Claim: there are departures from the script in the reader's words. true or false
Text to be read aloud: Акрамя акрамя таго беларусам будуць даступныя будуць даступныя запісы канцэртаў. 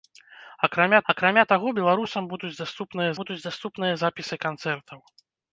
false